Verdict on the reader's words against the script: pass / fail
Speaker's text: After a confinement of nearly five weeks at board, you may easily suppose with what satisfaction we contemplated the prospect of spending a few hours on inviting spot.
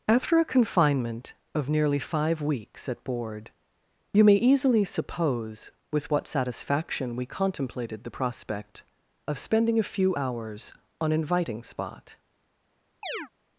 pass